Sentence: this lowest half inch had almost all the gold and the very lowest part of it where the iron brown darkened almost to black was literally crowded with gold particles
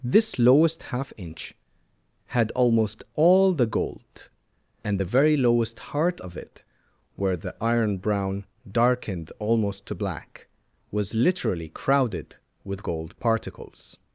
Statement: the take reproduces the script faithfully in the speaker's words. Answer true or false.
false